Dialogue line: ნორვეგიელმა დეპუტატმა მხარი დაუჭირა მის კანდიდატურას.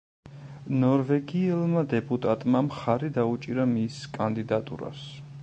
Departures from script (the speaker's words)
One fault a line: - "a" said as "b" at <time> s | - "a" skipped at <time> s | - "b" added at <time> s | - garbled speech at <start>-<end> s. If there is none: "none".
none